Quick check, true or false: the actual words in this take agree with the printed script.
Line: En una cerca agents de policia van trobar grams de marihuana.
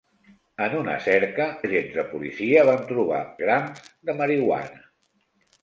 true